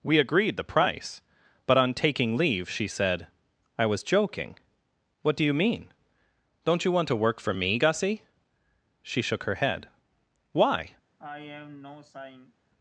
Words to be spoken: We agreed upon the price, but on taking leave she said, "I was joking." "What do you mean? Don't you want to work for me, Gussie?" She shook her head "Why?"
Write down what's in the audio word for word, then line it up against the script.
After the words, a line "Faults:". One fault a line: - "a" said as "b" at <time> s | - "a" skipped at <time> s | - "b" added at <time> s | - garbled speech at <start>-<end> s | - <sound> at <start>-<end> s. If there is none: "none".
We agreed the price, but on taking leave she said, "I was joking." "What do you mean? Don't you want to work for me, Gussie?" She shook her head "Why?"
Faults:
- "upon" skipped at 0.6 s
- sigh at 11.2-12.5 s